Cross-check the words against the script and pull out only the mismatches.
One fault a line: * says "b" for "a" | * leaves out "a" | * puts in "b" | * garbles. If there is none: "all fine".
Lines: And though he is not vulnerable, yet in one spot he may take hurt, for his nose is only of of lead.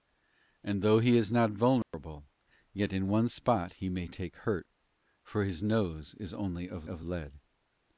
all fine